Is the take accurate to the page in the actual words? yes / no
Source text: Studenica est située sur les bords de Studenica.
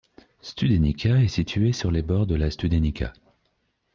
no